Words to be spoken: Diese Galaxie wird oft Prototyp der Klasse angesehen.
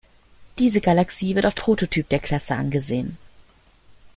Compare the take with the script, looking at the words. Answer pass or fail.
pass